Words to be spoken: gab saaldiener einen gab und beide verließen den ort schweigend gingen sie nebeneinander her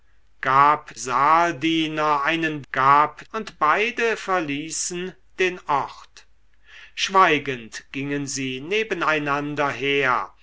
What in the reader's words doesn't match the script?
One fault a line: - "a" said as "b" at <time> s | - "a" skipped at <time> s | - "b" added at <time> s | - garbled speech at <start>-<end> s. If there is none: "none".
none